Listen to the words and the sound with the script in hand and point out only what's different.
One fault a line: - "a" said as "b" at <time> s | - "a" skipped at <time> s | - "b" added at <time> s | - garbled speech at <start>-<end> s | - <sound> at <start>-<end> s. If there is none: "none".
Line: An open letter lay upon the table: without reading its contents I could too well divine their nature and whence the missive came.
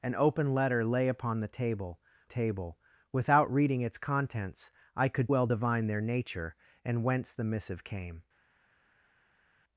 - "table" added at 2.2 s
- "too" skipped at 5.3 s